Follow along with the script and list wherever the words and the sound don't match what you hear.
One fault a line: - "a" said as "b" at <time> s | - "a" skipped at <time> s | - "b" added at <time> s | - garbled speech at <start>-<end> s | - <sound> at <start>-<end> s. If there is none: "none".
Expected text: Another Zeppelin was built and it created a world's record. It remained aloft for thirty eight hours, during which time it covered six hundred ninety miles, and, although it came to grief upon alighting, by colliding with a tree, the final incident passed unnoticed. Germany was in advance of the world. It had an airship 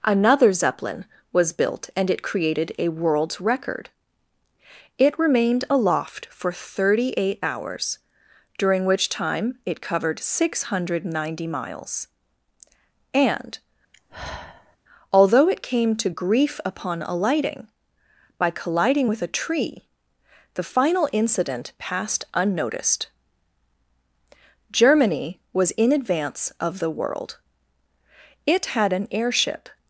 - sigh at 13.9-14.8 s